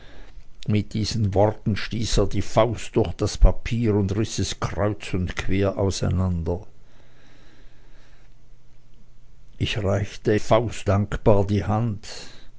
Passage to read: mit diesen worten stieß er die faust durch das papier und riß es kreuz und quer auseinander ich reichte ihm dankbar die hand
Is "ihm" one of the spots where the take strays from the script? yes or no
yes